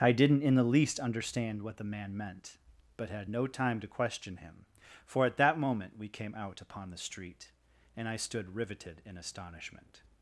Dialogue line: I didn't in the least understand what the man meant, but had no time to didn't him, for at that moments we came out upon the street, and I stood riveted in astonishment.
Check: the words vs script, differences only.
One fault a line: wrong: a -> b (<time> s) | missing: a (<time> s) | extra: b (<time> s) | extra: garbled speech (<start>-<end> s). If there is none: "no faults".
wrong: didn't -> question (3.9 s)
wrong: moments -> moment (5.6 s)